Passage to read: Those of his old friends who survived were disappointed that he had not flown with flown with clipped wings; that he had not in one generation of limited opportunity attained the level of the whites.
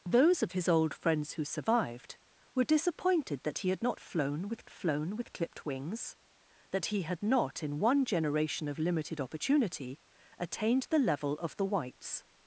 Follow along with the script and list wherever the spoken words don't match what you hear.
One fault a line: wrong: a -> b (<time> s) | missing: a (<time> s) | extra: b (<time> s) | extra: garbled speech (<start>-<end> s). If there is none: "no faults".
no faults